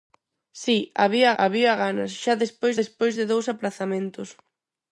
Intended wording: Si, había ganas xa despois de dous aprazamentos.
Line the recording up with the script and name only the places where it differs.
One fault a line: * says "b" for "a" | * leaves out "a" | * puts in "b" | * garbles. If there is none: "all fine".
* puts in "había"
* puts in "despois"